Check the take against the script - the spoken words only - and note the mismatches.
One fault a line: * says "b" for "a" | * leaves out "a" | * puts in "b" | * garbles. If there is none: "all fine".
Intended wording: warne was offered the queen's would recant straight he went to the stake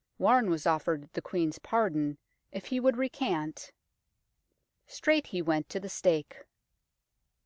* puts in "pardon if he"